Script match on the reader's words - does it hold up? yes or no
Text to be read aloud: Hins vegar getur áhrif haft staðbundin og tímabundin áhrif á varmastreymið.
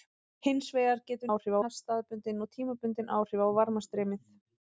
yes